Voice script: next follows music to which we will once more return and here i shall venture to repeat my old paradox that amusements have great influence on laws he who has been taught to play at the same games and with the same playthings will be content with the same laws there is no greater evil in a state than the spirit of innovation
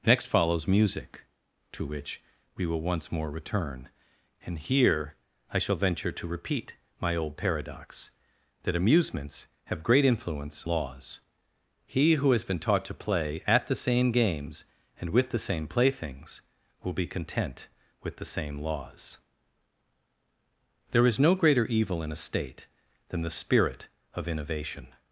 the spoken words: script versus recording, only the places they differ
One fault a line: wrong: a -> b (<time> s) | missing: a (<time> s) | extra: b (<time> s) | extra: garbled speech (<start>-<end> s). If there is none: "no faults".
missing: on (10.7 s)